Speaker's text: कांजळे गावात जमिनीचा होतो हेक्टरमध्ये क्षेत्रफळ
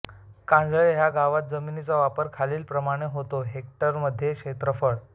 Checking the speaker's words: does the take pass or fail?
fail